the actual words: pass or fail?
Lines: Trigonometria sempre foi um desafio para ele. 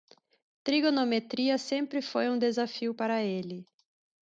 pass